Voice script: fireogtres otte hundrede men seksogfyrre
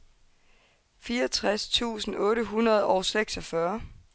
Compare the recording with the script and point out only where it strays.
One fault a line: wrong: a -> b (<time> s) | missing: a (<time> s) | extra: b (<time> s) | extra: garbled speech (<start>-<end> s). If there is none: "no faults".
extra: tusind (1.7 s)
wrong: men -> og (2.9 s)